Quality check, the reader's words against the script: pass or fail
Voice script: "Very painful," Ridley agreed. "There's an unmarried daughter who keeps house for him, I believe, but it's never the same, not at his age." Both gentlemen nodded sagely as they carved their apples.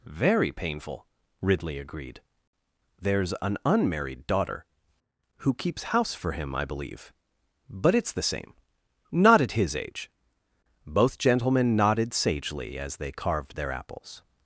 fail